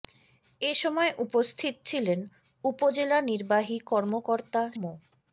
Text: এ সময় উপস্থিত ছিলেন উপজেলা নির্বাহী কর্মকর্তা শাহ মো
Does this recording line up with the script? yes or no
no